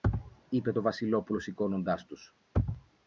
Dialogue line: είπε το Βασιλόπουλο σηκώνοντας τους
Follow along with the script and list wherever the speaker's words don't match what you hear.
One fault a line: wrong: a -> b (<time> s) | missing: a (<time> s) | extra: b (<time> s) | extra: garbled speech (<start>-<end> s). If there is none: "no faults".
no faults